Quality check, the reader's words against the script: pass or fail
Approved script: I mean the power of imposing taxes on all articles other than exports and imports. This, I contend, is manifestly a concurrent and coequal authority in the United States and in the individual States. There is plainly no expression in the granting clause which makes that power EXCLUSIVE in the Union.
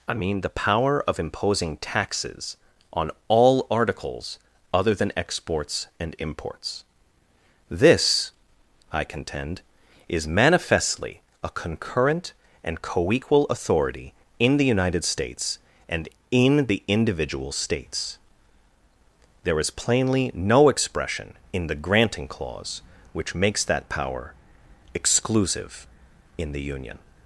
pass